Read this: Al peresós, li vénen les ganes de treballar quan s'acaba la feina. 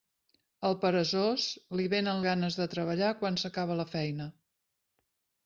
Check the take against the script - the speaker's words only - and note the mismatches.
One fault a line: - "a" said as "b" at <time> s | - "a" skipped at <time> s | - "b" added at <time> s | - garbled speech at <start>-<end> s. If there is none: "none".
- "les" skipped at 2.2 s